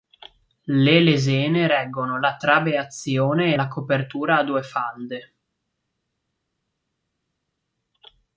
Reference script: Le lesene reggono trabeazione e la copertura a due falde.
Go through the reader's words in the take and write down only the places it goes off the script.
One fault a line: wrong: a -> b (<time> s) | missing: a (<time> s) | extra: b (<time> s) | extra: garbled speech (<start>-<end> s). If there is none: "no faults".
extra: la (2.2 s)